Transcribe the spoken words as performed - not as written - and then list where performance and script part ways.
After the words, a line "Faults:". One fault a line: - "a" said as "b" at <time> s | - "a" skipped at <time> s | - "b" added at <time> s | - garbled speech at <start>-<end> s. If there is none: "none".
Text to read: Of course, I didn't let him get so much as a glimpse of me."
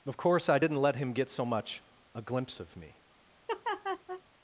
Of course, I didn't let him get so much a glimpse of me."
Faults:
- "as" skipped at 1.8 s